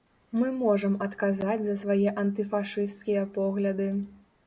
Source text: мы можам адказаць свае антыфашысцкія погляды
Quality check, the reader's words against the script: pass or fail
fail